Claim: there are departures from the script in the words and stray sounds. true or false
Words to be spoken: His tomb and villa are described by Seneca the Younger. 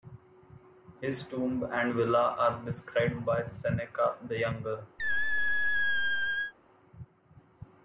true